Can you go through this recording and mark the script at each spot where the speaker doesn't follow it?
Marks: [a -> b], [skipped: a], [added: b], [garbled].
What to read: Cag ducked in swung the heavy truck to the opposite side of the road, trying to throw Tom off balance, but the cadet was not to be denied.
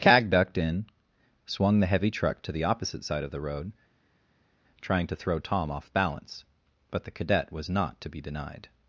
Cag ducked in swung the heavy truck to the opposite side of the road, trying to throw Tom off balance, but the cadet was not to be denied.